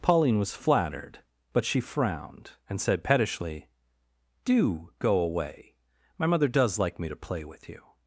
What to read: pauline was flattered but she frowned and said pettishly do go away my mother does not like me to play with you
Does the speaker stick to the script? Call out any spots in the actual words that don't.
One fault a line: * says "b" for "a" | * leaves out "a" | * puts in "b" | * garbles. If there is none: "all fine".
* leaves out "not"